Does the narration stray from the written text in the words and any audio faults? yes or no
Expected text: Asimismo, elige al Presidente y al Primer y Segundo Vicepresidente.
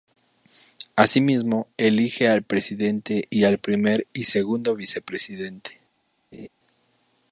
yes